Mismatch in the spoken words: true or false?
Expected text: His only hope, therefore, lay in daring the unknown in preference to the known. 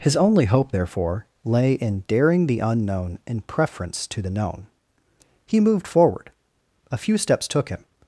true